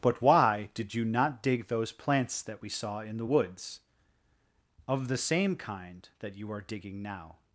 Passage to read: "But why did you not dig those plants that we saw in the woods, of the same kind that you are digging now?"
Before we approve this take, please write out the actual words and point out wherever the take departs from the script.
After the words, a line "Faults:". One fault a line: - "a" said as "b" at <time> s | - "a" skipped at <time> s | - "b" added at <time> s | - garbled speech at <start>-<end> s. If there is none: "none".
"But why did you not dig those plants that we saw in the woods, of the same kind that you are digging now?"
Faults:
none